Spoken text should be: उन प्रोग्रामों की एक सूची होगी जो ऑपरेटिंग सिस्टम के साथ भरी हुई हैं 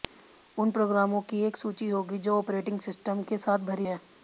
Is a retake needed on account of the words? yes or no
yes